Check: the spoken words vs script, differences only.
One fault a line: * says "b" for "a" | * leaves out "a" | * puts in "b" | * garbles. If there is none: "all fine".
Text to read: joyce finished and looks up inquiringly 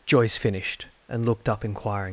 * says "looked" for "looks"